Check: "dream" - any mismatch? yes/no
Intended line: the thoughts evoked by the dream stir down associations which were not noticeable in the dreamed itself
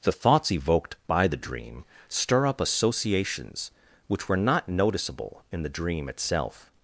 no